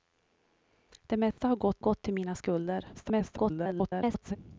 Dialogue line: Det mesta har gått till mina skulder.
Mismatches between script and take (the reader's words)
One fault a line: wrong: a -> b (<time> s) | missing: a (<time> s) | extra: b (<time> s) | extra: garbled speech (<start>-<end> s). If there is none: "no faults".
extra: gått (1.8 s)
extra: garbled speech (2.9-4.4 s)